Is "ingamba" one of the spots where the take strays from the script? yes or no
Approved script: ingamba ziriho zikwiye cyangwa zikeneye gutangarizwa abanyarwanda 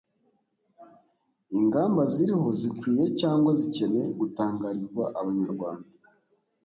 no